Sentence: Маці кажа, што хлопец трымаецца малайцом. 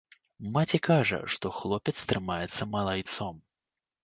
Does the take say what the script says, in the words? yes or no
yes